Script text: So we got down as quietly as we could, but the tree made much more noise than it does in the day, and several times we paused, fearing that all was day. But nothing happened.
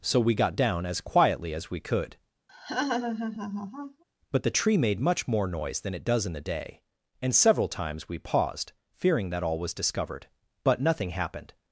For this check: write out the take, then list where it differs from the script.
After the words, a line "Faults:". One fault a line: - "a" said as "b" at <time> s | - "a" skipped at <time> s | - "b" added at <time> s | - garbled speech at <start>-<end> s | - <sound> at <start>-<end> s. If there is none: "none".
So we got down as quietly as we could, but the tree made much more noise than it does in the day, and several times we paused, fearing that all was discovered. But nothing happened.
Faults:
- laugh at 2.5-4.0 s
- "day" said as "discovered" at 9.7 s